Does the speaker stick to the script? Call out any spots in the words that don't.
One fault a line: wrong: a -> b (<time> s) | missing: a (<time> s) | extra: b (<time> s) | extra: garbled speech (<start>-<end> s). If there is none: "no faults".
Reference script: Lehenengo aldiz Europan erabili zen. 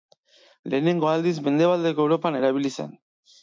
extra: Mendebaldeko (1.5 s)